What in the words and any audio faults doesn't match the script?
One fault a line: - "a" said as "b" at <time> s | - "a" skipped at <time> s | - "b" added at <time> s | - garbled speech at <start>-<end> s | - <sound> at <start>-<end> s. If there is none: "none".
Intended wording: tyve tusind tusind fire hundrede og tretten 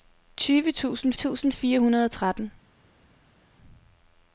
none